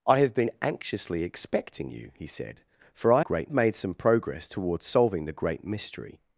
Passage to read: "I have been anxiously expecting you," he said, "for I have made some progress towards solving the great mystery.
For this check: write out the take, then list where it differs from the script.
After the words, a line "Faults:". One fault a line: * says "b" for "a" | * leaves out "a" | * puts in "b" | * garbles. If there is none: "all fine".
"I have been anxiously expecting you," he said, "for I great made some progress towards solving the great mystery.
Faults:
* says "great" for "have"